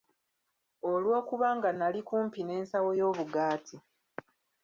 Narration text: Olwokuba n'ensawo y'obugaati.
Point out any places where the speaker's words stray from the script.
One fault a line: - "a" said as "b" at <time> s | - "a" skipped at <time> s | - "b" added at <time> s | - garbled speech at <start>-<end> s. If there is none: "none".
- "nga nali kumpi" added at 1.6 s